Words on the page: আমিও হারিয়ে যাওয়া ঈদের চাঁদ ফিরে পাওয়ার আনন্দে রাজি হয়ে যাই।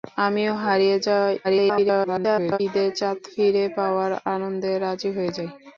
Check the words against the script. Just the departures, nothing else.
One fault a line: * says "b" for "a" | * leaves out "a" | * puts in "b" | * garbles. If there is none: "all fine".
* garbles